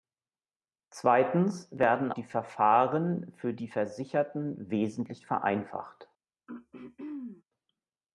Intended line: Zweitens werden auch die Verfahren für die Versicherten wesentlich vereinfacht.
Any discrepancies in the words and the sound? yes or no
yes